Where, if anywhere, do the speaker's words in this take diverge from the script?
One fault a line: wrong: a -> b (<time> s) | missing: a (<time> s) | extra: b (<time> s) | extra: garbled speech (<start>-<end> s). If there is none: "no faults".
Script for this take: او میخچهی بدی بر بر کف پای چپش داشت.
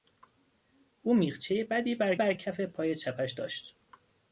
no faults